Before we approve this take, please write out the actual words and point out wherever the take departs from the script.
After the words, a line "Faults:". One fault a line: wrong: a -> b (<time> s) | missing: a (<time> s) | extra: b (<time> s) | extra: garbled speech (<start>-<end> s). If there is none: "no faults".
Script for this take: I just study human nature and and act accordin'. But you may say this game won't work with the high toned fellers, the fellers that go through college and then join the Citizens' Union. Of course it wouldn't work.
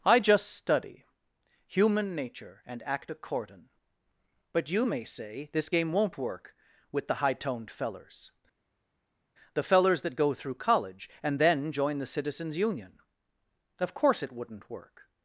I just study human nature and act accordin'. But you may say this game won't work with the high toned fellers, the fellers that go through college and then join the Citizens' Union. Of course it wouldn't work.
Faults:
missing: and (2.8 s)